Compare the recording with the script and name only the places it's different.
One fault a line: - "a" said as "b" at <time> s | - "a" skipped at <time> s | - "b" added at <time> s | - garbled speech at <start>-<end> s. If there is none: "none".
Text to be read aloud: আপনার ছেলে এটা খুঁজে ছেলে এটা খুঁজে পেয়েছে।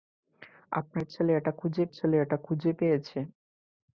none